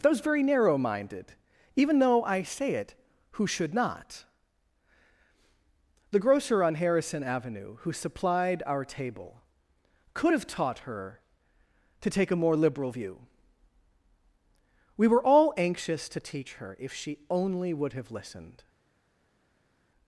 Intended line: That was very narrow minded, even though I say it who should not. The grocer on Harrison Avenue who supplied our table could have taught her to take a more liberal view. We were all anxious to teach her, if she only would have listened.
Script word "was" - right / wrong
wrong